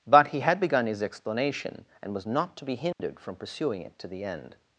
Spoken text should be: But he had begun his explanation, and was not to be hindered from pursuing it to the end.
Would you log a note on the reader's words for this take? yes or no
no